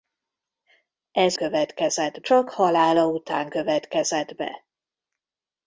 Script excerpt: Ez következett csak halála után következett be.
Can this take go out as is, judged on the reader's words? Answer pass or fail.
pass